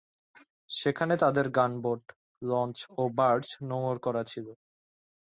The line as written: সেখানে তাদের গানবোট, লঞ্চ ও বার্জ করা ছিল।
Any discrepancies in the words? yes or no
yes